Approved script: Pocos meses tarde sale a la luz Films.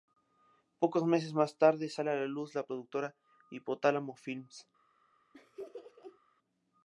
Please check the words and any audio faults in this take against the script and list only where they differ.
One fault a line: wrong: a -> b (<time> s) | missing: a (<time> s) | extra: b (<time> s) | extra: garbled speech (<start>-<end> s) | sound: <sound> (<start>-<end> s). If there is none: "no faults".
extra: más (1.4 s)
extra: la productora Hipotálamo (2.5 s)
sound: laugh (5.3-6.2 s)